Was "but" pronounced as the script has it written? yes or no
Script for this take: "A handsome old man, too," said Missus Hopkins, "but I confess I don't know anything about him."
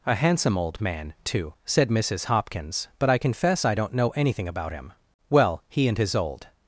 yes